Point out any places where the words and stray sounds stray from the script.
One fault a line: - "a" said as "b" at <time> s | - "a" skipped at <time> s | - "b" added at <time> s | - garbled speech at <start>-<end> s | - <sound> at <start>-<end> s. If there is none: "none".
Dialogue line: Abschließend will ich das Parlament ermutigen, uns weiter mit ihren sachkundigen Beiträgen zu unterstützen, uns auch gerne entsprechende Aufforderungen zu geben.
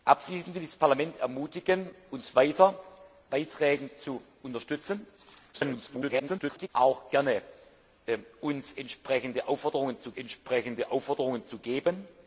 - "mit ihren sachkundigen" skipped at 2.8 s
- garbled speech at 5.5-6.7 s
- "entsprechende Aufforderungen zu" added at 10.1 s